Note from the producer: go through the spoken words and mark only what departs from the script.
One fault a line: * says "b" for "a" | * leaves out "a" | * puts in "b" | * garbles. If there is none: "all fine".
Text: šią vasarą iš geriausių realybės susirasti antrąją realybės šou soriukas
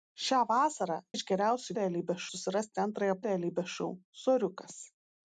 all fine